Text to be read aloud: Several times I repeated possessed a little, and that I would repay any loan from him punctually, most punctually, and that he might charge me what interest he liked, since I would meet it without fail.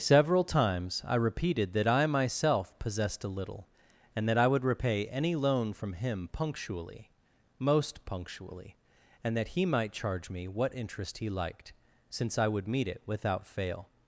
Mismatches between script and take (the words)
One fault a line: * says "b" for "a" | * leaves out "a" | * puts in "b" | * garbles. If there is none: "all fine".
* puts in "that I myself"